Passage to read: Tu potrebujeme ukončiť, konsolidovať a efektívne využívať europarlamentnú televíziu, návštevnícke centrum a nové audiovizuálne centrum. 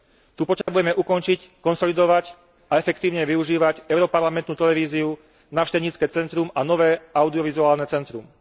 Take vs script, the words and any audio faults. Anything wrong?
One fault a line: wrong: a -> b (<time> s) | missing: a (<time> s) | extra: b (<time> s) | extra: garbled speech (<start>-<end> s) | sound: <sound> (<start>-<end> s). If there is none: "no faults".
sound: dropout (0.6-0.7 s)